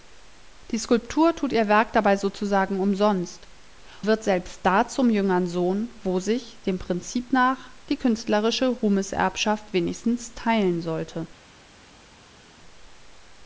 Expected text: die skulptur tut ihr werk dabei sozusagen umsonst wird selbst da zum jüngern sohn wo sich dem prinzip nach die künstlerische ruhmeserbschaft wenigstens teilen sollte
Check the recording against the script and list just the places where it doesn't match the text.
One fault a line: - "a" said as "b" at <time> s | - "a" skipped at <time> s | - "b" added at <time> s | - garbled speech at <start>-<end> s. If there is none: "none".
none